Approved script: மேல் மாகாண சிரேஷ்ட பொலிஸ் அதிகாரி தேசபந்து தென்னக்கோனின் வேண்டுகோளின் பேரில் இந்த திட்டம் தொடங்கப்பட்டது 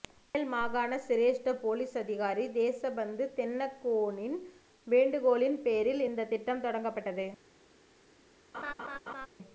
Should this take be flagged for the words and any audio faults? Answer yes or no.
yes